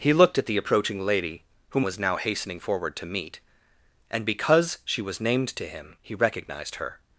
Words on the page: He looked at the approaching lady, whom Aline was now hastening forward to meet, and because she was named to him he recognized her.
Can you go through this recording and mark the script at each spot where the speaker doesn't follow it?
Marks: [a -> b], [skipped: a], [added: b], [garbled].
He looked at the approaching lady, whom [skipped: Aline] was now hastening forward to meet, and because she was named to him he recognized her.